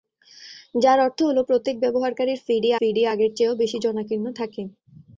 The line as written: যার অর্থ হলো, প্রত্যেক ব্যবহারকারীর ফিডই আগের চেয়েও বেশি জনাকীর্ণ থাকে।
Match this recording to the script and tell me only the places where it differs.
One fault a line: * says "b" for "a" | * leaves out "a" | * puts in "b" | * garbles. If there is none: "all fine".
* puts in "ফিডই"